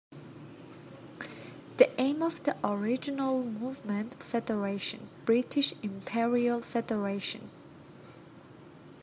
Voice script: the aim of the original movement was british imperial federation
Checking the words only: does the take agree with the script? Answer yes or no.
no